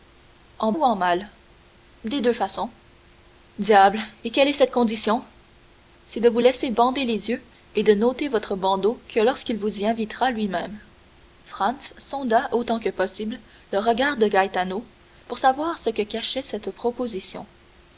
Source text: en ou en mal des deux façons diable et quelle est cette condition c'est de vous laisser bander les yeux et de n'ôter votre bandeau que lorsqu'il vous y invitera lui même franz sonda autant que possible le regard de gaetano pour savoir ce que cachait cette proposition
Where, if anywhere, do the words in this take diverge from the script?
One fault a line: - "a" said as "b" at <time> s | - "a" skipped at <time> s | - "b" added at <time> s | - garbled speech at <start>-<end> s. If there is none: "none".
none